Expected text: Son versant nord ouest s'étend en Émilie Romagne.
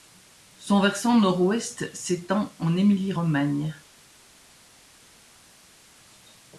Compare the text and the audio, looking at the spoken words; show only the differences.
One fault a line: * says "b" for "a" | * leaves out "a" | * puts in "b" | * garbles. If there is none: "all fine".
all fine